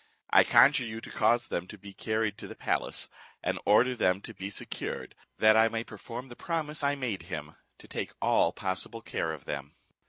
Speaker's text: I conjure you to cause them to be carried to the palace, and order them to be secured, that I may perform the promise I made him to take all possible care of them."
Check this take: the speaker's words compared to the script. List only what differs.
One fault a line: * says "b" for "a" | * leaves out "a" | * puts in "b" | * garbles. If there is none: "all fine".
all fine